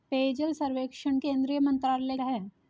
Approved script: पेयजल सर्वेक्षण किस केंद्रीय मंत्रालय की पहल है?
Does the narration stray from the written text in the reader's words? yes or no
yes